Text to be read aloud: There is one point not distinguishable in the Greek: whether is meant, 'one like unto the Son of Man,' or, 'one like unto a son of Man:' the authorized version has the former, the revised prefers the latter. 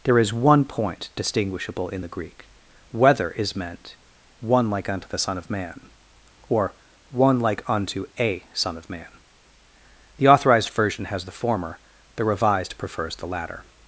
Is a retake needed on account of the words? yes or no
yes